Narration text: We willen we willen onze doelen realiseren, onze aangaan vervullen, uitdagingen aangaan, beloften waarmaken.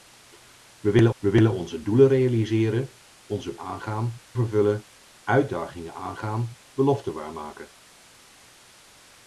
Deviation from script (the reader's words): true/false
false